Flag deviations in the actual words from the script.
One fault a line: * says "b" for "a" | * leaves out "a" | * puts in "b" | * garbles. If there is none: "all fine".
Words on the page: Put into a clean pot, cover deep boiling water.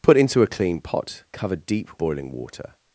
all fine